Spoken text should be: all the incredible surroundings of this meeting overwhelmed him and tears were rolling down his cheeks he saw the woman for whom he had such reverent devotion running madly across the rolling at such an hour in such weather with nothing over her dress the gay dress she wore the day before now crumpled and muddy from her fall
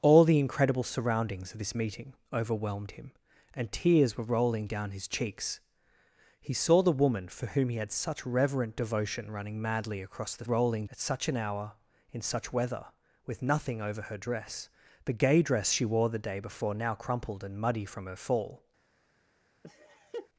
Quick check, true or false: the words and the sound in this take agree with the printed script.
false